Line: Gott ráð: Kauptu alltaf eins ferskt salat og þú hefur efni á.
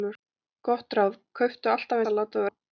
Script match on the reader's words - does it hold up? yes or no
no